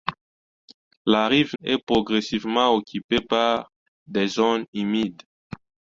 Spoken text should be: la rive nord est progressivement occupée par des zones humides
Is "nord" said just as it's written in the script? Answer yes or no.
no